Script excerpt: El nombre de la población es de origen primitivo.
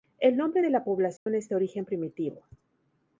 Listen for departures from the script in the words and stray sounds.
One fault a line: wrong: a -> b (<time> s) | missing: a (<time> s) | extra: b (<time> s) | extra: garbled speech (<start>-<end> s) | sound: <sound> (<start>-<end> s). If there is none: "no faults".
sound: dropout (1.2-1.3 s)